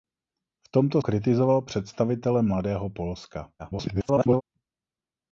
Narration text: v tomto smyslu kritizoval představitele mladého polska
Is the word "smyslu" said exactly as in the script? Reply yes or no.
no